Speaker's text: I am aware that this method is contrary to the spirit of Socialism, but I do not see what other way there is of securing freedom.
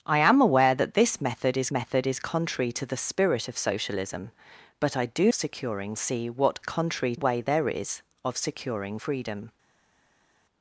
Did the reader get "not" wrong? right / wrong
wrong